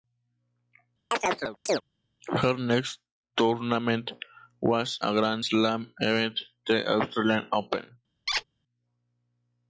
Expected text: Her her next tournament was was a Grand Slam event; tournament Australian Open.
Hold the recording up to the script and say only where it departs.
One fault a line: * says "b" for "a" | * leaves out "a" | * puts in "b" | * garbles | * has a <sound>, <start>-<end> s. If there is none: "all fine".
* has a chirp, 1.1-1.8 s
* leaves out "her"
* leaves out "was"
* says "the" for "tournament"
* has a squeak, 8.3-8.4 s